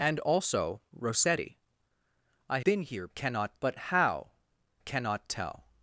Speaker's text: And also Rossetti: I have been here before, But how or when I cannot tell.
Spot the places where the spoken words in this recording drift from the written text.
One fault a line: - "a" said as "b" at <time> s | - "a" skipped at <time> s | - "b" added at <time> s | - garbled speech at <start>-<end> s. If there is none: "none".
- "have" skipped at 2.6 s
- "before" said as "cannot" at 3.1 s
- "or when I" skipped at 4.3 s